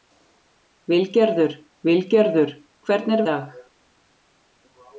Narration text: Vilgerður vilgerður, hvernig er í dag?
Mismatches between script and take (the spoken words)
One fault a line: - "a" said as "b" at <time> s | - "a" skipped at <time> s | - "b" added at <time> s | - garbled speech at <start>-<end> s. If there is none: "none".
none